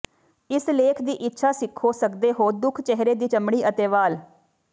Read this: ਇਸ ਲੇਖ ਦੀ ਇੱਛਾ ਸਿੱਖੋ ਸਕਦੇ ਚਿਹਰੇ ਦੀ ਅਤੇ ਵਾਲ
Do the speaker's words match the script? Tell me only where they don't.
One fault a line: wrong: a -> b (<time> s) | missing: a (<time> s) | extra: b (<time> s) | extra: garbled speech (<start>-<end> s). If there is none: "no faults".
extra: ਹੋ ਦੁੱਖ (2.4 s)
extra: ਚਮੜੀ (3.2 s)